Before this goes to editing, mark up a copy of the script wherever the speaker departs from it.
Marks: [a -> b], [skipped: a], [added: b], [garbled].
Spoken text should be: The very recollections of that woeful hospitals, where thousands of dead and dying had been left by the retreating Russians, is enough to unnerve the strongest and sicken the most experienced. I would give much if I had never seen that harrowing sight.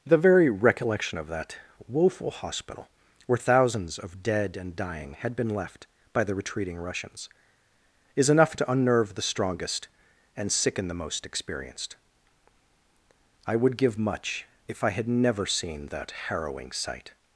The very [recollections -> recollection] of that woeful [hospitals, -> hospital] where thousands of dead and dying had been left by the retreating Russians, is enough to unnerve the strongest and sicken the most experienced. I would give much if I had never seen that harrowing sight.